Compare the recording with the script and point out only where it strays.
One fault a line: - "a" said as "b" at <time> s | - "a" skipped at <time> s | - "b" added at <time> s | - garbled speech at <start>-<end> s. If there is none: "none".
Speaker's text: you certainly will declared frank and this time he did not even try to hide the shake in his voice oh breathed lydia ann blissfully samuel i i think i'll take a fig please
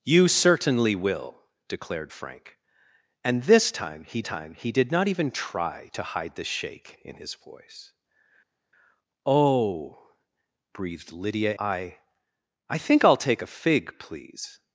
- "time he" added at 4.2 s
- "ann blissfully samuel" skipped at 11.5 s